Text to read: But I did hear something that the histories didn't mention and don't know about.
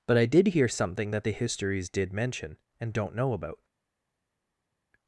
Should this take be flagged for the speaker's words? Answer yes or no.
yes